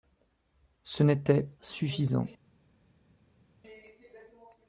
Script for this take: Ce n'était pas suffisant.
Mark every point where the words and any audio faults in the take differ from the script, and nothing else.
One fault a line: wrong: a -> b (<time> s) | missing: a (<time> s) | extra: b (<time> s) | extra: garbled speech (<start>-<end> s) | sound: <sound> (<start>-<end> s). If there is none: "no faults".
missing: pas (1.5 s)